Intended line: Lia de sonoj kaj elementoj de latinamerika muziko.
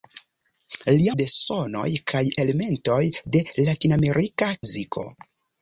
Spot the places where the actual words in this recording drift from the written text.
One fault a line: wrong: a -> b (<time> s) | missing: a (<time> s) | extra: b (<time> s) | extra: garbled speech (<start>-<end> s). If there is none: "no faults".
no faults